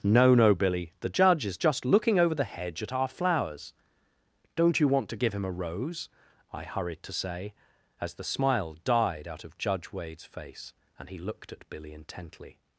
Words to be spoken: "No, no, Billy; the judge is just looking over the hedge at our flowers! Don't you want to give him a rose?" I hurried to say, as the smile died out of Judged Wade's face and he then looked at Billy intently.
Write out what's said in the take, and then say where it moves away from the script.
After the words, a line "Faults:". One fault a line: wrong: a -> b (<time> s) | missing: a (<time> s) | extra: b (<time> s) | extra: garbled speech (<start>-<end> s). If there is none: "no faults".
"No, no, Billy; the judge is just looking over the hedge at our flowers! Don't you want to give him a rose?" I hurried to say, as the smile died out of Judge Wade's face and he looked at Billy intently.
Faults:
wrong: Judged -> Judge (9.6 s)
missing: then (11.2 s)